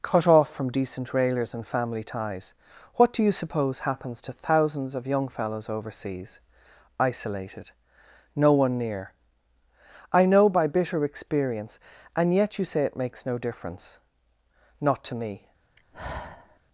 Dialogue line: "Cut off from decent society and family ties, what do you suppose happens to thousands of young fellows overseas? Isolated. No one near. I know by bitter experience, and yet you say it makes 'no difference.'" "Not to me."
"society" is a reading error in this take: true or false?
true